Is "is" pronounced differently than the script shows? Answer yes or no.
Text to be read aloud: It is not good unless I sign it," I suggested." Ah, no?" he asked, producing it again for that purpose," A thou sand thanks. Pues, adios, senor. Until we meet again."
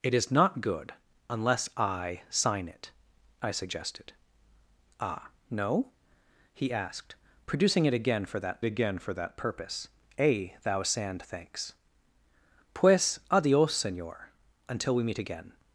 no